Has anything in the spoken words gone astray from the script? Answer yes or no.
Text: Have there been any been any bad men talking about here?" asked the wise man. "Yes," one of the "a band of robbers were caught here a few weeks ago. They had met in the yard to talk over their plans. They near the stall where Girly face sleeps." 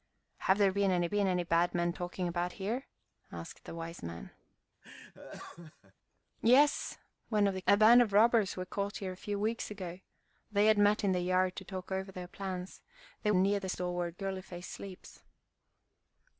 no